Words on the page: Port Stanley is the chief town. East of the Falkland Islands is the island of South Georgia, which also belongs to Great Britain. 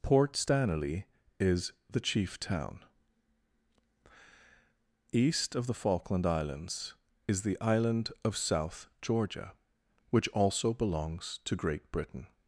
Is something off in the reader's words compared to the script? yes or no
no